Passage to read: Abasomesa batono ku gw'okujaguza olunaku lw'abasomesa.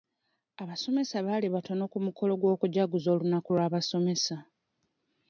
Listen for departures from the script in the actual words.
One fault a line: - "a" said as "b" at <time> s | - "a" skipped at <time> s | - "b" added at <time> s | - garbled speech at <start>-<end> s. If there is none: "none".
- "baali" added at 1.2 s
- "mukolo" added at 2.0 s